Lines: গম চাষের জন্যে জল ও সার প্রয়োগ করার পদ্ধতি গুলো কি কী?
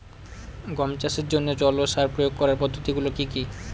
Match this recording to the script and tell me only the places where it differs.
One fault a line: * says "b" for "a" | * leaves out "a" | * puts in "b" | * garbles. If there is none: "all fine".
all fine